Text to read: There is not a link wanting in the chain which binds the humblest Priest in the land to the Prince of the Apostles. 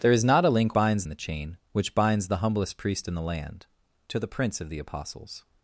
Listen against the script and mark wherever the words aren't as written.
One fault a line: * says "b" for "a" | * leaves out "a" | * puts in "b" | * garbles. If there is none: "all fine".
* says "binds" for "wanting"